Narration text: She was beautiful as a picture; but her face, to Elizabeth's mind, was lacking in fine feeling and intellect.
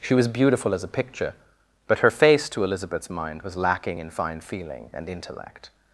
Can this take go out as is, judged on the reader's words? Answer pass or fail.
pass